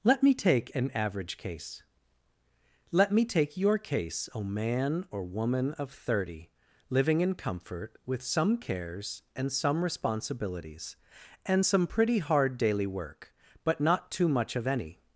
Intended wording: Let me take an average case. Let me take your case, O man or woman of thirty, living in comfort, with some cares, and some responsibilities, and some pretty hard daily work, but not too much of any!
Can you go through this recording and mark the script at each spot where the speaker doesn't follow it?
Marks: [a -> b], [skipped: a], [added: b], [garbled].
Let me take an average case. Let me take your case, O man or woman of thirty, living in comfort, with some cares, and some responsibilities, and some pretty hard daily work, but not too much of any!